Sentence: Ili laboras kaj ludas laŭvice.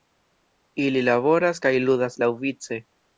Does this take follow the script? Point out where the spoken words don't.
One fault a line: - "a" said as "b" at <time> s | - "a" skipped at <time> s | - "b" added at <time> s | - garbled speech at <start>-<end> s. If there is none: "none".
none